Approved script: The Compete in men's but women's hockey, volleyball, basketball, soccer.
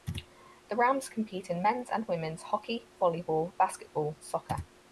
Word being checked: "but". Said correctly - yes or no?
no